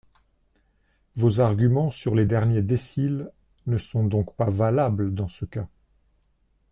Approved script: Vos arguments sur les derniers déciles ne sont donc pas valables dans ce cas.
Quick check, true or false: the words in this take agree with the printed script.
true